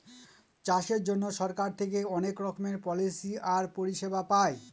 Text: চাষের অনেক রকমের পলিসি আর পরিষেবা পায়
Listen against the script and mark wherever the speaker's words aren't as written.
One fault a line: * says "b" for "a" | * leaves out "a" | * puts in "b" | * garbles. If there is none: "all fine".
* puts in "জন্য সরকার থেকে"